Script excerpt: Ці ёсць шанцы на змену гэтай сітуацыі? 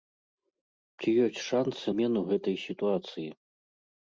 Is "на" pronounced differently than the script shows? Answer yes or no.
yes